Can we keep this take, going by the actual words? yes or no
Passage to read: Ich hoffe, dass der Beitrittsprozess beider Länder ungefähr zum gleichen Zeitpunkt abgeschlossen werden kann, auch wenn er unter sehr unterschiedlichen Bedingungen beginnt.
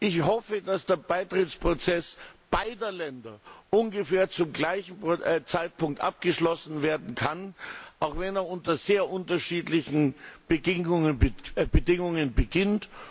yes